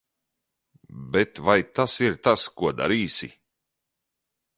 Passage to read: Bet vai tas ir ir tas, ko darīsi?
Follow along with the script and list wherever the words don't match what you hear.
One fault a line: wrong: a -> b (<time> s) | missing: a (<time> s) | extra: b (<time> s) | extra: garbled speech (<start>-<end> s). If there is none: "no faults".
missing: ir (2.2 s)